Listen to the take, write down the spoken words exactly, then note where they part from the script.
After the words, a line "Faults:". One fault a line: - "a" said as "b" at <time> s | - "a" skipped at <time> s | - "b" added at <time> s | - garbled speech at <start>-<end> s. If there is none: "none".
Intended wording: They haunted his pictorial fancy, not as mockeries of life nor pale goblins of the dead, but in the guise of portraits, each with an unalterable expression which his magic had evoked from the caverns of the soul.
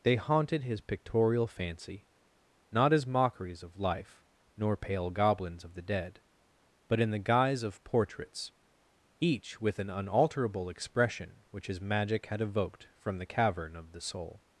They haunted his pictorial fancy, not as mockeries of life nor pale goblins of the dead, but in the guise of portraits, each with an unalterable expression which his magic had evoked from the cavern of the soul.
Faults:
- "caverns" said as "cavern" at 13.2 s